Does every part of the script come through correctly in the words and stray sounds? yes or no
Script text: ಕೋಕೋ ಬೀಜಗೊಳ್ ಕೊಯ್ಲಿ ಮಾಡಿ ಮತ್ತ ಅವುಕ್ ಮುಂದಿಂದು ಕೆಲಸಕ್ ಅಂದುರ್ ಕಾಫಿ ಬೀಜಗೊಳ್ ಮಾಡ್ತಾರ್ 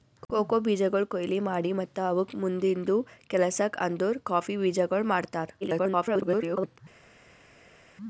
no